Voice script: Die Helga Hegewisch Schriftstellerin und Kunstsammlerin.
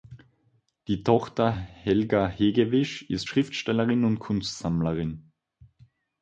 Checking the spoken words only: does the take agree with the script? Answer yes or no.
no